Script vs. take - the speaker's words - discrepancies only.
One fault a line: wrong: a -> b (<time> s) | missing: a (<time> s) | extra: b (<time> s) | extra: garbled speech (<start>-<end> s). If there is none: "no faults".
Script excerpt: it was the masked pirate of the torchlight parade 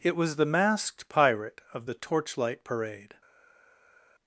no faults